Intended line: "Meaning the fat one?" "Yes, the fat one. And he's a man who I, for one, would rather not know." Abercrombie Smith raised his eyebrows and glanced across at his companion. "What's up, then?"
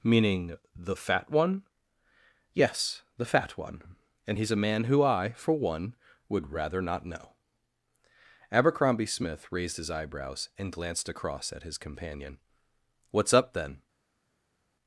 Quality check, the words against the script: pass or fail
pass